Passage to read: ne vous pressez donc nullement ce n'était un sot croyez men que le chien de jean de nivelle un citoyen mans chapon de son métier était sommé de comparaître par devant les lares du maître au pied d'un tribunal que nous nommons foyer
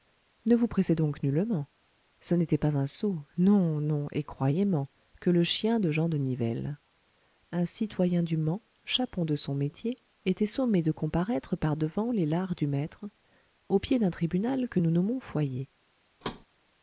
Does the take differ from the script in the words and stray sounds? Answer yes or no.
yes